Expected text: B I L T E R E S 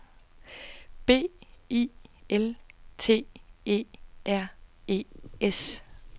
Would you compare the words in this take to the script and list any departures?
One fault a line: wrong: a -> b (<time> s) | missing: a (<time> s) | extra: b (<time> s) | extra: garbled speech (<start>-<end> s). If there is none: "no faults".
no faults